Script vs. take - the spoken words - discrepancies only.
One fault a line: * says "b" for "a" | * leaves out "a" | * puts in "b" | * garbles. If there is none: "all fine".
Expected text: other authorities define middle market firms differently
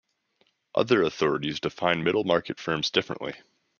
all fine